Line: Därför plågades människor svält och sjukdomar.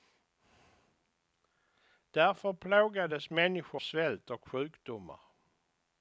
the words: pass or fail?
pass